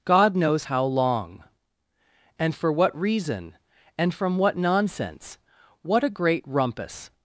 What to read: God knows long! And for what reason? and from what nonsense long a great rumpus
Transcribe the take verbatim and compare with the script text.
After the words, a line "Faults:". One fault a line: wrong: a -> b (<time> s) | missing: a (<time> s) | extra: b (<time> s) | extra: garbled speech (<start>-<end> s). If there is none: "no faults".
God knows how long! And for what reason? and from what nonsense what a great rumpus
Faults:
extra: how (0.6 s)
wrong: long -> what (5.8 s)